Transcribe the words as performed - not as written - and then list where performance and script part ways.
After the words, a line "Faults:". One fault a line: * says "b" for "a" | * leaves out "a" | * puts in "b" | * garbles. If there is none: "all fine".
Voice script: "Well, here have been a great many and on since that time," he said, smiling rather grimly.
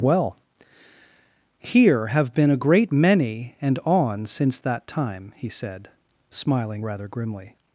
"Well, here have been a great many and on since that time," he said, smiling rather grimly.
Faults:
all fine